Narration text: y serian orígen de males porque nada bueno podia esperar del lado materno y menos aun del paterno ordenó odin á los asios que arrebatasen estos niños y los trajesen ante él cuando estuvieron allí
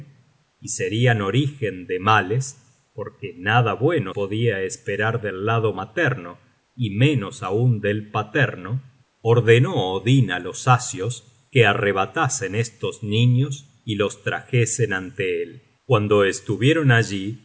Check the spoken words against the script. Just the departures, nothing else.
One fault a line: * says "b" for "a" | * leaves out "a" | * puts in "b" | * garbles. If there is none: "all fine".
all fine